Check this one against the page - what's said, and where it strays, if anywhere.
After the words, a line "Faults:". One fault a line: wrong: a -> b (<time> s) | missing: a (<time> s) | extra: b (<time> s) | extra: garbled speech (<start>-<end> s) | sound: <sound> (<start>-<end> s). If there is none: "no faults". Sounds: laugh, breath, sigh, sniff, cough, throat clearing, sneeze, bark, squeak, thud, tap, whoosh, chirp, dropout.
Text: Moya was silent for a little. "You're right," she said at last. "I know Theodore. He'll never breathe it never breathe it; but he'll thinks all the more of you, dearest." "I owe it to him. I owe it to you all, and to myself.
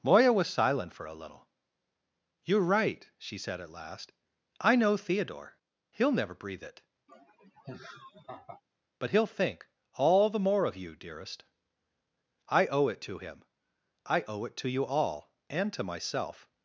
Moya was silent for a little. "You're right," she said at last. "I know Theodore. He'll never breathe it; but he'll think all the more of you, dearest." "I owe it to him. I owe it to you all, and to myself.
Faults:
missing: never breathe it (6.8 s)
sound: laugh (7.1-8.6 s)
wrong: thinks -> think (9.3 s)